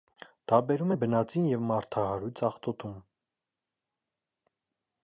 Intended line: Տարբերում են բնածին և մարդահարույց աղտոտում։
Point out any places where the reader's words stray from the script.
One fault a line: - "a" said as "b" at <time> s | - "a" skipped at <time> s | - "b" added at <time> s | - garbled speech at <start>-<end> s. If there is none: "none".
none